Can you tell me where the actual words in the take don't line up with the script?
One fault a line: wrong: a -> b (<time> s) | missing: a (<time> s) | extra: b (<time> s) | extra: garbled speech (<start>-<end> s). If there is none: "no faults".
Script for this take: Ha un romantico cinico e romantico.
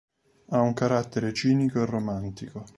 wrong: romantico -> carattere (0.7 s)